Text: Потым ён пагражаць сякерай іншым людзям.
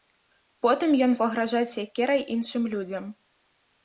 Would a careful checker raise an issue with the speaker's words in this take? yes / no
no